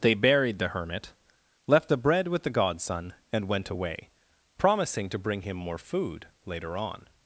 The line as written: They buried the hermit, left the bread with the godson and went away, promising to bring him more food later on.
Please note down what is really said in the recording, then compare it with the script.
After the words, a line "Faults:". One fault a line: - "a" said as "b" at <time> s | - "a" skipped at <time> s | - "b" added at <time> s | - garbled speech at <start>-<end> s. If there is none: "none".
They buried the hermit, left the bread with the godson and went away, promising to bring him more food later on.
Faults:
none